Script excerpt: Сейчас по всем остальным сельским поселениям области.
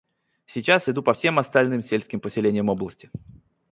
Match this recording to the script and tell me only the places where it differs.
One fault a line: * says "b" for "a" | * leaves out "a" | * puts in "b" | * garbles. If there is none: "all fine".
* puts in "иду"